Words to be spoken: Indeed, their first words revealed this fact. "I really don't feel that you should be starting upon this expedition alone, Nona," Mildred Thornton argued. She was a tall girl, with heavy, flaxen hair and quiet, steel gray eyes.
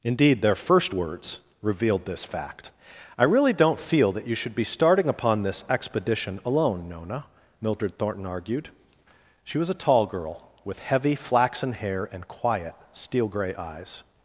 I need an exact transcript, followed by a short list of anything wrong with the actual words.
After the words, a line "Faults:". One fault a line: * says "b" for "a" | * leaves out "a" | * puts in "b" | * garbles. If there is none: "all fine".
Indeed, their first words revealed this fact. "I really don't feel that you should be starting upon this expedition alone, Nona," Mildred Thornton argued. She was a tall girl, with heavy, flaxen hair and quiet, steel gray eyes.
Faults:
all fine